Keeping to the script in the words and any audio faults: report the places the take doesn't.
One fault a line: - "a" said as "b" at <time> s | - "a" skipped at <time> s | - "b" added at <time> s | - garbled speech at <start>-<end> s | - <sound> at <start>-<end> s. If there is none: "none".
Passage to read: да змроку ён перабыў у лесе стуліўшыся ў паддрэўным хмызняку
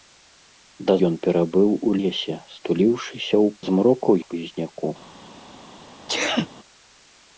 - "змроку" skipped at 0.9 s
- "паддрэўным" said as "змроку" at 3.6 s
- sneeze at 6.1-6.5 s